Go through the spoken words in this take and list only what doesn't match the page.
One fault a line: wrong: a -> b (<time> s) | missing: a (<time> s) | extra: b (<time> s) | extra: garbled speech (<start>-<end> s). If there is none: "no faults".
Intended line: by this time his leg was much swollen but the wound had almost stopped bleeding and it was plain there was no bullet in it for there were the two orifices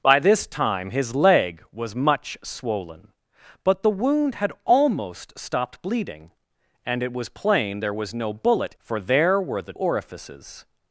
missing: in it (8.7 s)
missing: two (9.7 s)